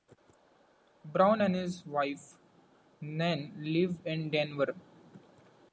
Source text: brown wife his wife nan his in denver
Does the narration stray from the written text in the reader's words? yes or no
yes